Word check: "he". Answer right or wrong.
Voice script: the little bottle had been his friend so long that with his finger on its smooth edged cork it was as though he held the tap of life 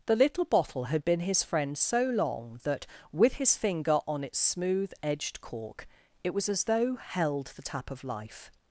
wrong